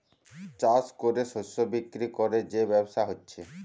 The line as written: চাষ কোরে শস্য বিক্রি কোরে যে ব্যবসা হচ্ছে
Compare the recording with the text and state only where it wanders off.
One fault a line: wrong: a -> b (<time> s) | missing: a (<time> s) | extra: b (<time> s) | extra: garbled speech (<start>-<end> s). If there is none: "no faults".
no faults